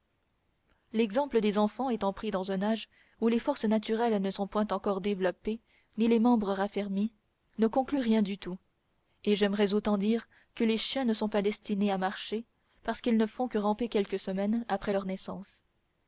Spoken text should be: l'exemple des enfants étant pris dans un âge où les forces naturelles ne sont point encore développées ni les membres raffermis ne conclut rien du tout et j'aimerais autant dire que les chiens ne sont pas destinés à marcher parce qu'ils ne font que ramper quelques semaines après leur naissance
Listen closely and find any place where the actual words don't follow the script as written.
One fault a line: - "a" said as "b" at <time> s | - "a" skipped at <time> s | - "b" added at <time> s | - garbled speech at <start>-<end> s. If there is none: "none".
none